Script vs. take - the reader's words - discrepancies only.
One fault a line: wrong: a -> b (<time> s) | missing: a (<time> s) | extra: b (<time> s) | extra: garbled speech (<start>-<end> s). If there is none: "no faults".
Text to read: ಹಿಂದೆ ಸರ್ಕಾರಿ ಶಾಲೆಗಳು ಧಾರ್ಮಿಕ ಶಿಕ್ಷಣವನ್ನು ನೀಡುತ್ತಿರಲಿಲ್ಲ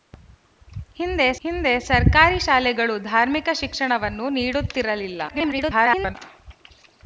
extra: ಹಿಂದೆ (1.4 s)
extra: garbled speech (5.3-6.2 s)